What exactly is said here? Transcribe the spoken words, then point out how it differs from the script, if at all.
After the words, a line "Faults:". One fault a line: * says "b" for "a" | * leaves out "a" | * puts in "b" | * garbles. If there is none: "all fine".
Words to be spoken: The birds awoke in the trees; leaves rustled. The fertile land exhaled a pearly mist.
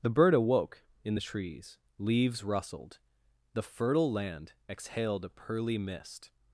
The bird awoke in the trees; leaves rustled. The fertile land exhaled a pearly mist.
Faults:
* says "bird" for "birds"